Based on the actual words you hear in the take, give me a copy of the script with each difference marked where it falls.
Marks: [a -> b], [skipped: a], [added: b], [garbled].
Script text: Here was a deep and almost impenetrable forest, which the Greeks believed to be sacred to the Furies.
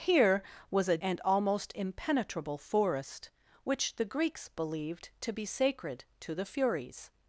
Here was a [skipped: deep] and almost impenetrable forest, which the Greeks believed to be sacred to the Furies.